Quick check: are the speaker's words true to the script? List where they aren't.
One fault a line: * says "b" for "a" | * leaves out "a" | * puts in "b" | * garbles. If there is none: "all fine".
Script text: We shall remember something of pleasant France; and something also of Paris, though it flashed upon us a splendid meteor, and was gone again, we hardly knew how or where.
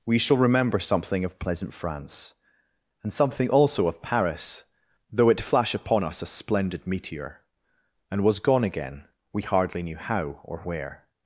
* says "flash" for "flashed"